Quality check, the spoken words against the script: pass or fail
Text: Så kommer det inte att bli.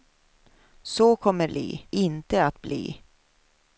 fail